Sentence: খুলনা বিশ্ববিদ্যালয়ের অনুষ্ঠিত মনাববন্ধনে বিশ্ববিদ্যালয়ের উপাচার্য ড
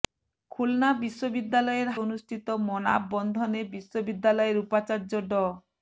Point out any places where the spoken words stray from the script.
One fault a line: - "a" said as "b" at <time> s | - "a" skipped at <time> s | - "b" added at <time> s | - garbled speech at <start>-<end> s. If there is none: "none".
none